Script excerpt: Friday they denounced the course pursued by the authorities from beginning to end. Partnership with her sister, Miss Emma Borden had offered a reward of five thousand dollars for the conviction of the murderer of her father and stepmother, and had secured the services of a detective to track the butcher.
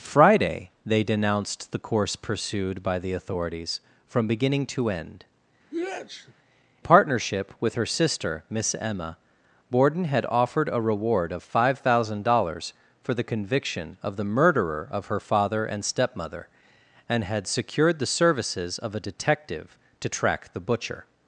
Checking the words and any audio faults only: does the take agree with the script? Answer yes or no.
no